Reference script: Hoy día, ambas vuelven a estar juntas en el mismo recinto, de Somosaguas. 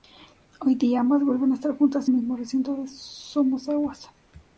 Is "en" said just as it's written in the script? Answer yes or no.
no